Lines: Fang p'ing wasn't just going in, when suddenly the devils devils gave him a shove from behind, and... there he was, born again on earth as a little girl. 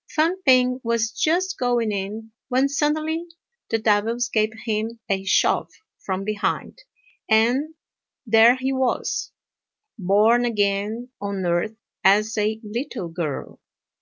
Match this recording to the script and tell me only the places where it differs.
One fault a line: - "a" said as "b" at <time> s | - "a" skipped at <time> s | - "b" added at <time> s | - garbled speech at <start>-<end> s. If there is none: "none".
- "wasn't" said as "was" at 0.8 s
- "devils" skipped at 4.3 s